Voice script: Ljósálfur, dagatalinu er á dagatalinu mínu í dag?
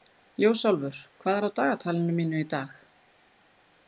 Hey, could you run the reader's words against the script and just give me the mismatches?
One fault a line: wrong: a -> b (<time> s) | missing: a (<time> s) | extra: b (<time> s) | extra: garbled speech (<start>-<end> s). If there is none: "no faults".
wrong: dagatalinu -> hvað (1.2 s)